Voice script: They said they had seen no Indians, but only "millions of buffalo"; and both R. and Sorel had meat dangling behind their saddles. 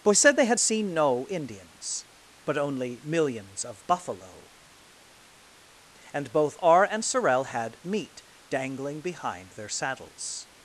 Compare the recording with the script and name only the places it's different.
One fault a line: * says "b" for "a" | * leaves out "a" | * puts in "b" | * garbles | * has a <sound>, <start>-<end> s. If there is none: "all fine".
* says "Boy" for "They"